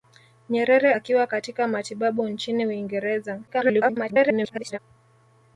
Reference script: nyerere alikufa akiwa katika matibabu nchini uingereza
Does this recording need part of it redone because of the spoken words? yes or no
yes